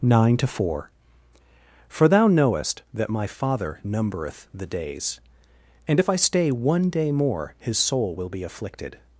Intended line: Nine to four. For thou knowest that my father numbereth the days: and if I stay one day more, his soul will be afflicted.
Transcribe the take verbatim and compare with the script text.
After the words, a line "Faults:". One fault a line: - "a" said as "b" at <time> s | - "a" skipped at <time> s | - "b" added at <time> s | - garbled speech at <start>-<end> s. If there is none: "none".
Nine to four. For thou knowest that my father numbereth the days: and if I stay one day more, his soul will be afflicted.
Faults:
none